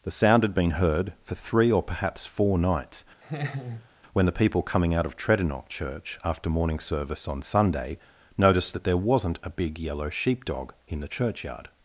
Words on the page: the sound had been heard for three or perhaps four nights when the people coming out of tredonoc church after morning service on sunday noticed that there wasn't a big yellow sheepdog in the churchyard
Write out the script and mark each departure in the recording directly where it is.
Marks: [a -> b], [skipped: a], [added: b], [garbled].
the sound had been heard for three or perhaps four nights when the people coming out of tredonoc church after morning service on sunday noticed that there wasn't a big yellow sheepdog in the churchyard